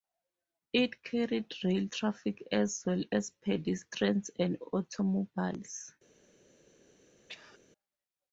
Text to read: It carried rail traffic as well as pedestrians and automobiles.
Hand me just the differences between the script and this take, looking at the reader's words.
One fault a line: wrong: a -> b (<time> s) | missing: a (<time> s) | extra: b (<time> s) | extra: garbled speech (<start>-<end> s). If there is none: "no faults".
no faults